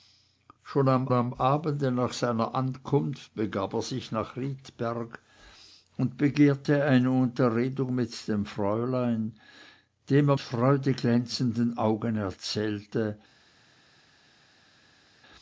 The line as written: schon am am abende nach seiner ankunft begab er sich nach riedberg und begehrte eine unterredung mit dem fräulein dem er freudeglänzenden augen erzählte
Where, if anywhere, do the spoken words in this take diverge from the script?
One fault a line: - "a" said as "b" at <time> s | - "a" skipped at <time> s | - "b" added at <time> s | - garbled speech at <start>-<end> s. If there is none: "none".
none